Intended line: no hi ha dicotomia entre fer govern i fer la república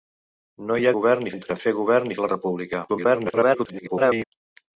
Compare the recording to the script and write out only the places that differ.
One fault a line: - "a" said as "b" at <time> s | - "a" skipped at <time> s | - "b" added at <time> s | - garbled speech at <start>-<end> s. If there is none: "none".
- "dicotomia" said as "govern" at 1.0 s
- "fer" skipped at 2.2 s
- garbled speech at 2.9-4.2 s